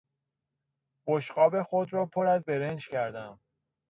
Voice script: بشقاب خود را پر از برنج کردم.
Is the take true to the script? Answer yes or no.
yes